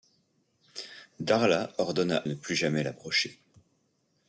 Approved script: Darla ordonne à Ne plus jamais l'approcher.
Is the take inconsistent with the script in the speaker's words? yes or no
no